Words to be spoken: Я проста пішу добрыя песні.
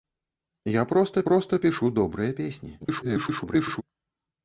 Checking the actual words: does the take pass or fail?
fail